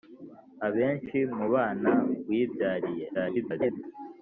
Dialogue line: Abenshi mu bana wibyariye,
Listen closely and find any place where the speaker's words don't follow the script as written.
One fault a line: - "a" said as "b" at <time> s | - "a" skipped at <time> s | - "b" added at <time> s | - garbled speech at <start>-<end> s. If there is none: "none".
- garbled speech at 3.1-3.8 s